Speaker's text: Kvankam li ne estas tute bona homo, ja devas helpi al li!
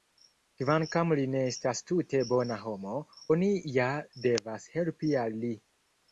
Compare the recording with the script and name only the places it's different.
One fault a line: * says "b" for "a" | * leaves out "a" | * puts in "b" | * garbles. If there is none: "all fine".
* puts in "oni"